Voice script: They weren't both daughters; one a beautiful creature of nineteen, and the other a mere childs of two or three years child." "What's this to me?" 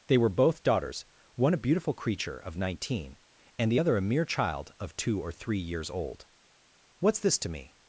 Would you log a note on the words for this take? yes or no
yes